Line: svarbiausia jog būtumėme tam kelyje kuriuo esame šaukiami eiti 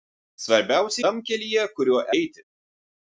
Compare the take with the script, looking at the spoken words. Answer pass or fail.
fail